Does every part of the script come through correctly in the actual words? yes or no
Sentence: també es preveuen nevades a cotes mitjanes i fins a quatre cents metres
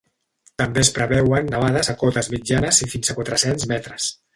yes